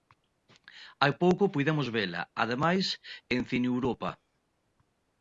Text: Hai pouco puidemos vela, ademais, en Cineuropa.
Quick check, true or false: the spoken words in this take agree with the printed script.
true